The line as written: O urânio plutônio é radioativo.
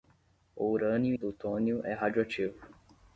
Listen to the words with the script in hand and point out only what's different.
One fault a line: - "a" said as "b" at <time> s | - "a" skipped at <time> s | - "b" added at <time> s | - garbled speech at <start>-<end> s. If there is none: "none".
none